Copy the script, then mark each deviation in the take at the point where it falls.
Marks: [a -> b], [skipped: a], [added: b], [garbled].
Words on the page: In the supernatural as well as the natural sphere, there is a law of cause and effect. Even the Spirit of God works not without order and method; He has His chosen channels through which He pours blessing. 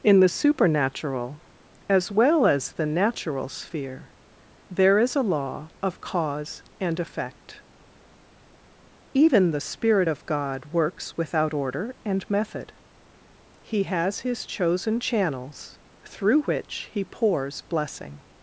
In the supernatural as well as the natural sphere, there is a law of cause and effect. Even the Spirit of God works [skipped: not] without order and method; He has His chosen channels through which He pours blessing.